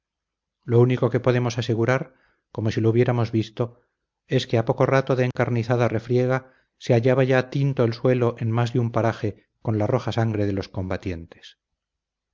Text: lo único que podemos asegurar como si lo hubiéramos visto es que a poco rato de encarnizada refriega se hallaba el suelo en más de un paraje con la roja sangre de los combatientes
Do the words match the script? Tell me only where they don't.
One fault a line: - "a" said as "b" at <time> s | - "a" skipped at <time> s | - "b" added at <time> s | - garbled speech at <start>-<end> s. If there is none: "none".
- "ya tinto" added at 7.2 s